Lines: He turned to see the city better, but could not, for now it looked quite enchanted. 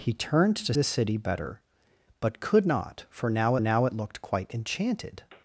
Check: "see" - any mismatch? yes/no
yes